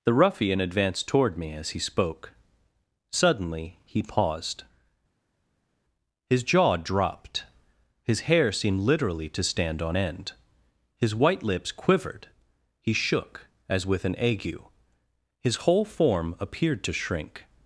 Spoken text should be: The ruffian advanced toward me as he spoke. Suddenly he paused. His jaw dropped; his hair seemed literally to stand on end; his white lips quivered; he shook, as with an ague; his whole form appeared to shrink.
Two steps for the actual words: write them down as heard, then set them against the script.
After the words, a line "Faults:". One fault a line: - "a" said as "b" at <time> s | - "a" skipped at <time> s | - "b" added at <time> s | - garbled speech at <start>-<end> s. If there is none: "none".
The ruffian advanced toward me as he spoke. Suddenly he paused. His jaw dropped; his hair seemed literally to stand on end; his white lips quivered; he shook, as with an ague; his whole form appeared to shrink.
Faults:
none